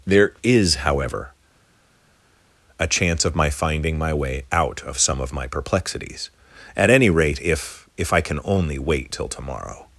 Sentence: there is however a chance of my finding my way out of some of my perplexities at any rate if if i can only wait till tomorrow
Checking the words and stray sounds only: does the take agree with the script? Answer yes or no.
yes